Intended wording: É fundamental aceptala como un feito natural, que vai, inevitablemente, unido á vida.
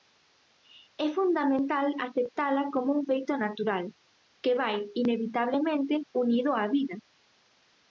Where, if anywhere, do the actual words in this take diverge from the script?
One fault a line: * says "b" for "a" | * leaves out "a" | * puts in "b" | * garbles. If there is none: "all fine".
all fine